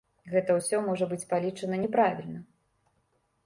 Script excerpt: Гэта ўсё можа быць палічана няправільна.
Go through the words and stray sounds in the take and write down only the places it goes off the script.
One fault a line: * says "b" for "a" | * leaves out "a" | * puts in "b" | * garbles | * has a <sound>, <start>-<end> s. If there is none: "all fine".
all fine